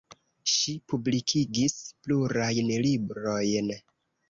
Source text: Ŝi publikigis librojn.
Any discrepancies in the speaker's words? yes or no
yes